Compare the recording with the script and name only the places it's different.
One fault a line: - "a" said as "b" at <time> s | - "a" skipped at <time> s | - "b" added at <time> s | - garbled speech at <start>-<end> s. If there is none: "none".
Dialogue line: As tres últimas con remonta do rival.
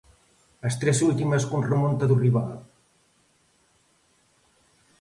none